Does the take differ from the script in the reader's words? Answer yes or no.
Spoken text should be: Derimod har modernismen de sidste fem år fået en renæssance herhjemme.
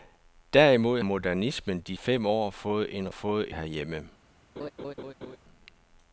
yes